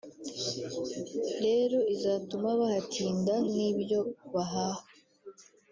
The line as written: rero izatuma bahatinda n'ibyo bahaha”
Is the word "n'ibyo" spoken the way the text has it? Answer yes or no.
yes